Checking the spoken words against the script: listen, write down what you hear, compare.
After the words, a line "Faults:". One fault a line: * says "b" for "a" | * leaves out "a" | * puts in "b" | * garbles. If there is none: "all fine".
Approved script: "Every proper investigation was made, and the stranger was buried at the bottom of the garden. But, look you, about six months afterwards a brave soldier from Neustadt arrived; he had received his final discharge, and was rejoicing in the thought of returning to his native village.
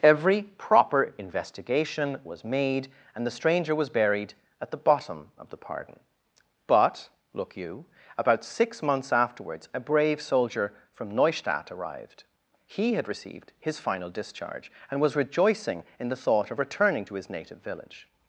"Every proper investigation was made, and the stranger was buried at the bottom of the pardon. But, look you, about six months afterwards a brave soldier from Neustadt arrived; he had received his final discharge, and was rejoicing in the thought of returning to his native village.
Faults:
* says "pardon" for "garden"